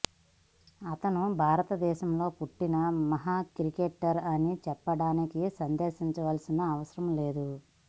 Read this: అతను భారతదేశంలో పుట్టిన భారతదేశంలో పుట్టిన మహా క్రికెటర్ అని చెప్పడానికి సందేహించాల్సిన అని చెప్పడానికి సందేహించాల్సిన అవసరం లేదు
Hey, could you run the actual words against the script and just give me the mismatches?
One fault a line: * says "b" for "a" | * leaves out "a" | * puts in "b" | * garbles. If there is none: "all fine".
* leaves out "భారతదేశంలో పుట్టిన"
* leaves out "అని చెప్పడానికి సందేహించాల్సిన"